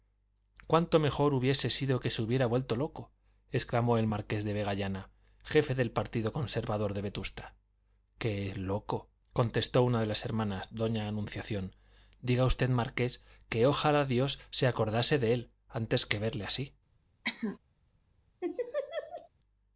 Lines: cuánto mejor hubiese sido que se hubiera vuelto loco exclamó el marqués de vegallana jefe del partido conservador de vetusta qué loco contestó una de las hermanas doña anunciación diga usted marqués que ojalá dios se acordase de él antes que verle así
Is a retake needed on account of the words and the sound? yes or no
yes